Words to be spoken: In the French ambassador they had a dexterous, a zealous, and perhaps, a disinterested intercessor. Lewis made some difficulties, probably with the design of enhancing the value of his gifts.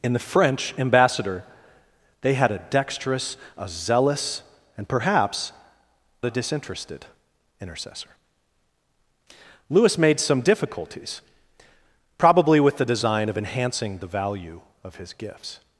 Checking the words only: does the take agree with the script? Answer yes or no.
yes